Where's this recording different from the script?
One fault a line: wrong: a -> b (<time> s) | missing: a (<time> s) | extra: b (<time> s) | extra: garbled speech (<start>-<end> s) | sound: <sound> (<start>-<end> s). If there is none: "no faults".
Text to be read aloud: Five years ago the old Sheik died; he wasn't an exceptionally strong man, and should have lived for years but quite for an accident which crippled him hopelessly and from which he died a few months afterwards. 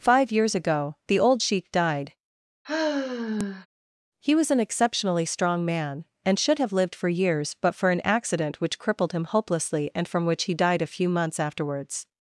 sound: sigh (2.6-3.7 s)
wrong: wasn't -> was (4.3 s)
missing: quite (7.7 s)